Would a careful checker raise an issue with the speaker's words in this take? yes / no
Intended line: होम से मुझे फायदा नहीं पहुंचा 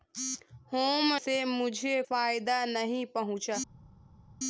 no